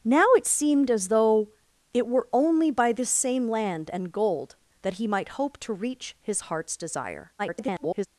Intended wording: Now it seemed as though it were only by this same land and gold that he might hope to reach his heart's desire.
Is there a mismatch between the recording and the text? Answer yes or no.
yes